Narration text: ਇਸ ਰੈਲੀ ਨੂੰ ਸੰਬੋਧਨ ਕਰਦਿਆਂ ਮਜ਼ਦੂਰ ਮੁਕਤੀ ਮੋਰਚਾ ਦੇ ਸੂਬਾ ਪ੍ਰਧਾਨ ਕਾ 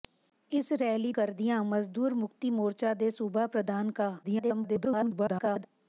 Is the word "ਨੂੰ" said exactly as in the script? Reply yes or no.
no